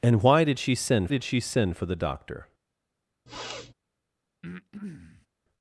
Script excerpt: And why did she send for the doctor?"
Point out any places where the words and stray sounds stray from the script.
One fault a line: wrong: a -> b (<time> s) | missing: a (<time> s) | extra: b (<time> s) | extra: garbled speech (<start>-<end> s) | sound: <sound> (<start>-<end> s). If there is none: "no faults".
extra: did she send (1.1 s)
sound: sniff (3.3-3.7 s)
sound: breath (4.4-5.3 s)